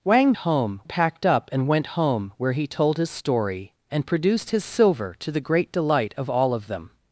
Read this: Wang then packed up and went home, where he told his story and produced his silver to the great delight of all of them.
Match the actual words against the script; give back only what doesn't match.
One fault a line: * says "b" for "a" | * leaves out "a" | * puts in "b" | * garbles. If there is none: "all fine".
* says "home" for "then"